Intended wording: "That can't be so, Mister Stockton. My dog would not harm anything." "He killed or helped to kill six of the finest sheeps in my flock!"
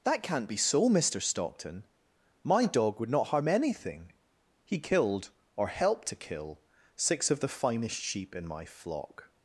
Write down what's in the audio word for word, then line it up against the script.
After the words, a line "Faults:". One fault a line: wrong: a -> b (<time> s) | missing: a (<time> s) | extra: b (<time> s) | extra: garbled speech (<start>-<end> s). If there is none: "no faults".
"That can't be so, Mister Stockton. My dog would not harm anything." "He killed or helped to kill six of the finest sheep in my flock!"
Faults:
wrong: sheeps -> sheep (8.0 s)